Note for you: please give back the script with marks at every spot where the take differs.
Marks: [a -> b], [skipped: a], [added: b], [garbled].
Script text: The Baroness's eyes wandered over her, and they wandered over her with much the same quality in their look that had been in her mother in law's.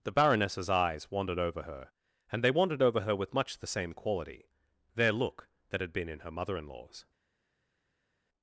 The Baroness's eyes wandered over her, and they wandered over her with much the same quality [skipped: in] their look that had been in her mother in law's.